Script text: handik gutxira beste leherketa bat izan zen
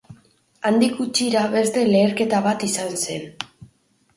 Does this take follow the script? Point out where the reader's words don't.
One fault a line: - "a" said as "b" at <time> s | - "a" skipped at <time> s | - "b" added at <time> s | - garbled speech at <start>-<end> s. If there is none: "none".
none